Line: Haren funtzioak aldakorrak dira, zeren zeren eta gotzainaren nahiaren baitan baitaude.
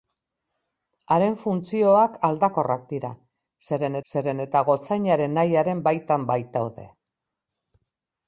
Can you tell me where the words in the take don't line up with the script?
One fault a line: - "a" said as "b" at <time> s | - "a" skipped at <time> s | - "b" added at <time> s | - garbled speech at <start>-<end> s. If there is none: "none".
none